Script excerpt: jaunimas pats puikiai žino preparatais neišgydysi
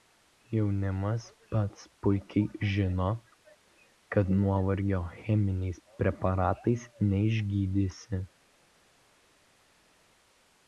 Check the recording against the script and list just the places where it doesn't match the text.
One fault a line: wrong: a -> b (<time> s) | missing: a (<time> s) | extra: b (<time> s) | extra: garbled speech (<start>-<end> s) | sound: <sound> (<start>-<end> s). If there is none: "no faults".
extra: kad nuovargio cheminiais (4.2 s)